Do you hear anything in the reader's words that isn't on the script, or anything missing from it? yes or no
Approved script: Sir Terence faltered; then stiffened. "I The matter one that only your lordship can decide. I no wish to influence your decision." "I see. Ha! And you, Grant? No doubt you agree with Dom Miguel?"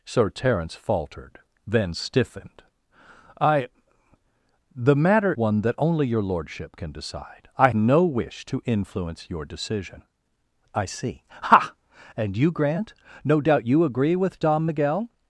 no